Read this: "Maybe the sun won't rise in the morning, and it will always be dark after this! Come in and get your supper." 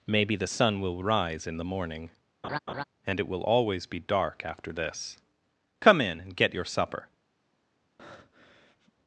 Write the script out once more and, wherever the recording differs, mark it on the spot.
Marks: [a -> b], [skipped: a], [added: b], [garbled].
"Maybe the sun [won't -> will] rise in the morning, and it will always be dark after this! Come in and get your supper."